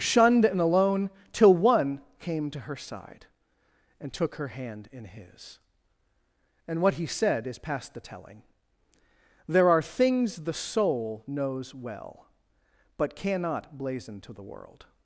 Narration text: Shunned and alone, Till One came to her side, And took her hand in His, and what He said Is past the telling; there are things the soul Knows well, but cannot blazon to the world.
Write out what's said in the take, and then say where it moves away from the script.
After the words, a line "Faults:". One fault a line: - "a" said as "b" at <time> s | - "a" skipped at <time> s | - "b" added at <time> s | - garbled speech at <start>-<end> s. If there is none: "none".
Shunned and alone, Till One came to her side, And took her hand in His, and what He said Is past the telling; there are things the soul Knows well, but cannot blazon to the world.
Faults:
none